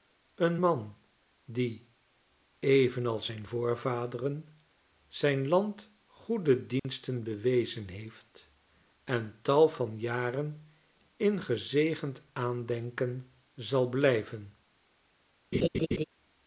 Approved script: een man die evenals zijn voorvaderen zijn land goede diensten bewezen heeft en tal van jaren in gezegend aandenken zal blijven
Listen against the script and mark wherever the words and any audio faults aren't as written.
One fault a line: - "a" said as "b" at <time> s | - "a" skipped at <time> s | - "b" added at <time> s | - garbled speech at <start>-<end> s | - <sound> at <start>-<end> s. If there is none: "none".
- dropout at 6.8-6.8 s
- laugh at 15.5-16.0 s